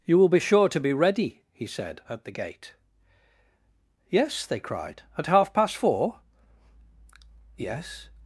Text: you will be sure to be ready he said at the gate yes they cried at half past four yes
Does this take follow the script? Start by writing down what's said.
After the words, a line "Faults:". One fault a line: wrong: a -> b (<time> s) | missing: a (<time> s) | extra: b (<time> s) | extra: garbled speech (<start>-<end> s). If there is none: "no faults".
you will be sure to be ready he said at the gate yes they cried at half past four yes
Faults:
no faults